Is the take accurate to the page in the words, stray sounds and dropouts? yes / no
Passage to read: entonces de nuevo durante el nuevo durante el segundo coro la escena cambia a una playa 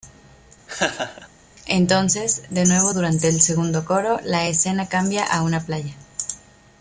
no